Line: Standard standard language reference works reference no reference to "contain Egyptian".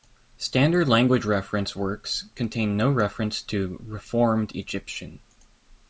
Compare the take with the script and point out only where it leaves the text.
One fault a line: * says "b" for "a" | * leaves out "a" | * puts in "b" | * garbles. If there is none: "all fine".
* leaves out "standard"
* says "contain" for "reference"
* says "reformed" for "contain"